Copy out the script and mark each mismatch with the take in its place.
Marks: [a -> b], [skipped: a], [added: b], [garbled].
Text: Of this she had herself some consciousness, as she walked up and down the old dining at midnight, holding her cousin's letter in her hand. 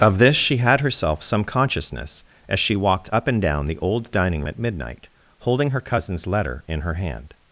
Of this she had herself some consciousness, as she walked up and down the old dining at midnight, holding her cousin's letter in her hand.